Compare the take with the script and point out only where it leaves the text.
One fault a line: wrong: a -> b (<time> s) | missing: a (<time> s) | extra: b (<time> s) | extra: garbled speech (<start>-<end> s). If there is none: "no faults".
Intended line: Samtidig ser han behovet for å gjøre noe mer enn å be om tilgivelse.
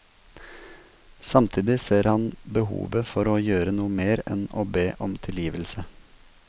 no faults